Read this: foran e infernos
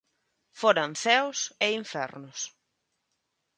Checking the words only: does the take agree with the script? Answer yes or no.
no